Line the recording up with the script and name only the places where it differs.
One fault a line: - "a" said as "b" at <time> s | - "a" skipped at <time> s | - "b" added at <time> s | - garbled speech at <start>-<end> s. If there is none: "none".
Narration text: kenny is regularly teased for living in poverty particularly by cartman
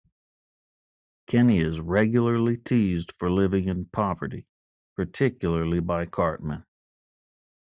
none